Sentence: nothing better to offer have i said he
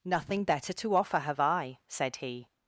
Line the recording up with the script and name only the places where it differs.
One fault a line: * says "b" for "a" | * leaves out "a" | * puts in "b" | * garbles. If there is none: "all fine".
all fine